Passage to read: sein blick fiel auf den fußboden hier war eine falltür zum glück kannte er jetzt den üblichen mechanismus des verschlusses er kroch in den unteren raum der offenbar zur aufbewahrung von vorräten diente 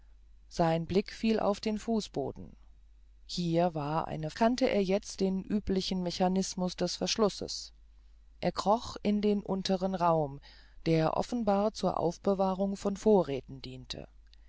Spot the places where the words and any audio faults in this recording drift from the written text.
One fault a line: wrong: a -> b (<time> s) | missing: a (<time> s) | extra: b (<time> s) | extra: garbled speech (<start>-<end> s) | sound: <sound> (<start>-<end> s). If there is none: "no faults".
missing: falltür zum glück (4.3 s)